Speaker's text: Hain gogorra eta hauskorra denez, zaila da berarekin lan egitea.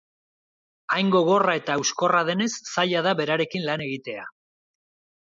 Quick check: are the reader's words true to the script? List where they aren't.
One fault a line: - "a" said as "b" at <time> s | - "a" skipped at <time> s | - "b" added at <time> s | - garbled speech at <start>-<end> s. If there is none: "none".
none